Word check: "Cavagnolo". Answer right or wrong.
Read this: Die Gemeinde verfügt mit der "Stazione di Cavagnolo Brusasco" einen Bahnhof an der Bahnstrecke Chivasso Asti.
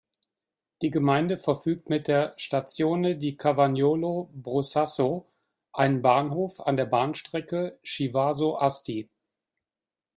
right